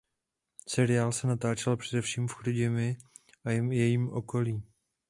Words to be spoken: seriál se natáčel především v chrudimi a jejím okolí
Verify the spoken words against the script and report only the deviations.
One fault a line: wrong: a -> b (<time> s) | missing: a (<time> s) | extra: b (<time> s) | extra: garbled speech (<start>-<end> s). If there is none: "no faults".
no faults